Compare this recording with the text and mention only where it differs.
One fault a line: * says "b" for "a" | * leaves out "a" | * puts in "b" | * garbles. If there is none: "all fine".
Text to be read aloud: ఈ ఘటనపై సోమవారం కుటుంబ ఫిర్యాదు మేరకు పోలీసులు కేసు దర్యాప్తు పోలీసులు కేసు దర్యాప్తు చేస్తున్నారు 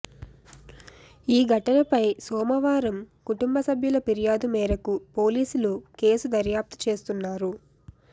* puts in "సభ్యుల"
* leaves out "పోలీసులు కేసు దర్యాప్తు"